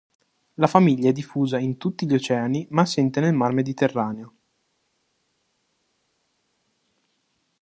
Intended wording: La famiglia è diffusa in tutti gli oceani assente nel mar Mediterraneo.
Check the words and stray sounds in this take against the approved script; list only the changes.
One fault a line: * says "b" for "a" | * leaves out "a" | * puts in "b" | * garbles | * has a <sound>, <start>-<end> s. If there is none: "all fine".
* puts in "ma"